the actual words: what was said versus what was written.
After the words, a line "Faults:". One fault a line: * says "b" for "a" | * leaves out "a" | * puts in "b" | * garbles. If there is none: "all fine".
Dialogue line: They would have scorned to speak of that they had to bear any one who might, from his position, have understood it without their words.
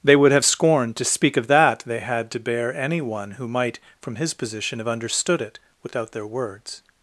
They would have scorned to speak of that they had to bear any one who might, from his position, have understood it without their words.
Faults:
all fine